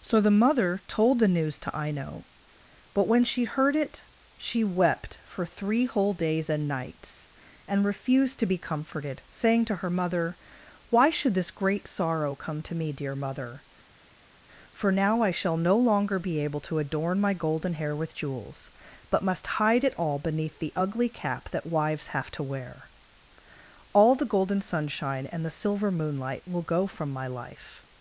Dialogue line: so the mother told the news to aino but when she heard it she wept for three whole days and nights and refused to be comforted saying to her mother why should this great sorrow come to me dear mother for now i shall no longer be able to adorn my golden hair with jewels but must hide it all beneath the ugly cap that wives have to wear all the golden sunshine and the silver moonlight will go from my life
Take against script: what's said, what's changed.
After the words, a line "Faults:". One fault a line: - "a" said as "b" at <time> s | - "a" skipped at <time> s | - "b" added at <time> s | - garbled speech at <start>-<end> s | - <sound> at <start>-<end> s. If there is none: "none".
so the mother told the news to aino but when she heard it she wept for three whole days and nights and refused to be comforted saying to her mother why should this great sorrow come to me dear mother for now i shall no longer be able to adorn my golden hair with jewels but must hide it all beneath the ugly cap that wives have to wear all the golden sunshine and the silver moonlight will go from my life
Faults:
none